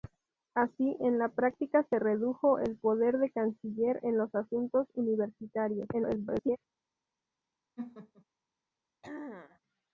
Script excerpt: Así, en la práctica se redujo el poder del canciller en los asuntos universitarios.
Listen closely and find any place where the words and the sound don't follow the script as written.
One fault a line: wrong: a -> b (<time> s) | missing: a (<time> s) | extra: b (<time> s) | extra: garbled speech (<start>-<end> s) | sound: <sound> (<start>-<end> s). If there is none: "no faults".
extra: garbled speech (5.9-6.6 s)
sound: laugh (7.8-8.2 s)
sound: throat clearing (9.0-9.6 s)